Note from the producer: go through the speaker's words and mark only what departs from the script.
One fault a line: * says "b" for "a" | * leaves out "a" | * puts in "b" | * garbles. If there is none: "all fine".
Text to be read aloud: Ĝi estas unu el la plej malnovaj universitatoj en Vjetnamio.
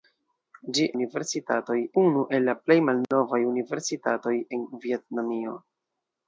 * says "universitatoj" for "estas"